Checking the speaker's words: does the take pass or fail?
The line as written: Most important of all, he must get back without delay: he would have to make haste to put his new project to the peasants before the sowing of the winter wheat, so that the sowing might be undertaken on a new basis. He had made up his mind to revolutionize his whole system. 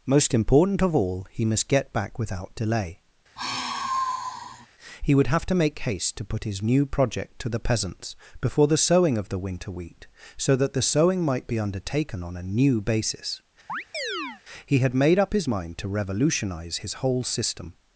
pass